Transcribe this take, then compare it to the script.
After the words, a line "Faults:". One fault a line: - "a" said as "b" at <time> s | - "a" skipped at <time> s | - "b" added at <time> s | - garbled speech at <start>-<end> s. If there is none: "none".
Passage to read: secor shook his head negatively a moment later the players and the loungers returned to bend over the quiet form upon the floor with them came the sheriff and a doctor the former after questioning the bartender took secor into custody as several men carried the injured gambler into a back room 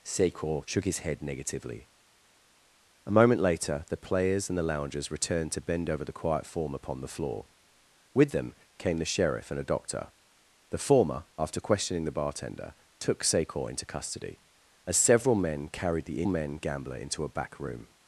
secor shook his head negatively a moment later the players and the loungers returned to bend over the quiet form upon the floor with them came the sheriff and a doctor the former after questioning the bartender took secor into custody as several men carried the men gambler into a back room
Faults:
- "injured" said as "men" at 16.2 s